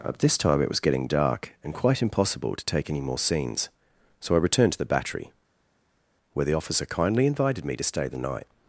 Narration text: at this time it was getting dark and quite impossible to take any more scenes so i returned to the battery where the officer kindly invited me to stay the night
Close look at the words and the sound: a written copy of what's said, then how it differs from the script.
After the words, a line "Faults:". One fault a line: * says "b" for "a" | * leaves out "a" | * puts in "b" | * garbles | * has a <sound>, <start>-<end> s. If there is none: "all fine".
at this time it was getting dark and quite impossible to take any more scenes so i returned to the battery where the officer kindly invited me to stay the night
Faults:
all fine